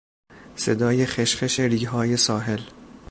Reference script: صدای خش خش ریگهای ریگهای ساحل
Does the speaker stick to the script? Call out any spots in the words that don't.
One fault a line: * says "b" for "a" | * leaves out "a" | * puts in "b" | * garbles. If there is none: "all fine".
* leaves out "ریگهای"